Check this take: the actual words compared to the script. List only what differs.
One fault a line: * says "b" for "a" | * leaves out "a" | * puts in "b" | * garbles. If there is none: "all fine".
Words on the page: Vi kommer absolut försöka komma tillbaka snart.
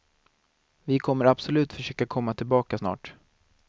all fine